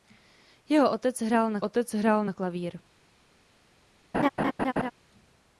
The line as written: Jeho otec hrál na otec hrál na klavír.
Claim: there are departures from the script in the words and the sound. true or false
true